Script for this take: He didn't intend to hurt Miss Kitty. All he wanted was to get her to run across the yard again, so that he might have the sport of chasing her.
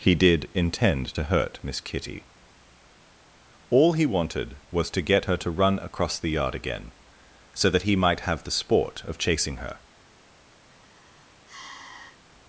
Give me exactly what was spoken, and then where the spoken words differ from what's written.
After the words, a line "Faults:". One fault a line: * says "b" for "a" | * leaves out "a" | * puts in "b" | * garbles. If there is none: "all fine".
He did intend to hurt Miss Kitty. All he wanted was to get her to run across the yard again, so that he might have the sport of chasing her.
Faults:
* says "did" for "didn't"